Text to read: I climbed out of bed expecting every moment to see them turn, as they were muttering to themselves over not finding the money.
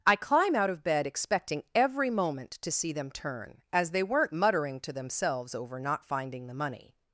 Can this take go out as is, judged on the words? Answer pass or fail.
fail